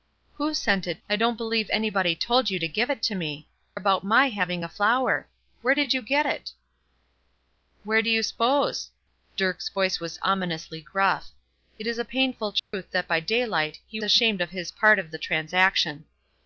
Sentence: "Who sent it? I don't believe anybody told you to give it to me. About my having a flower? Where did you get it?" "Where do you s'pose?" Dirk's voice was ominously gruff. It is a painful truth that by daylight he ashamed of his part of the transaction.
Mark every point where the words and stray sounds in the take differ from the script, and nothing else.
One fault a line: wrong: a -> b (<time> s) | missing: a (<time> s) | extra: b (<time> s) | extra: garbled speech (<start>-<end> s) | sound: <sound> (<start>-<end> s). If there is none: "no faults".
sound: dropout (12.6-12.7 s)